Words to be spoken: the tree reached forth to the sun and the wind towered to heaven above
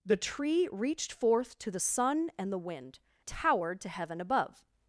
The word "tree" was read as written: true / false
true